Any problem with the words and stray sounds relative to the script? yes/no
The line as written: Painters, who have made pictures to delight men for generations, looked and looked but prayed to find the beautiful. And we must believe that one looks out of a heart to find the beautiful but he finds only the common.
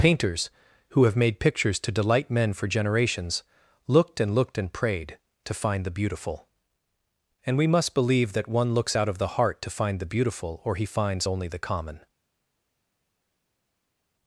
yes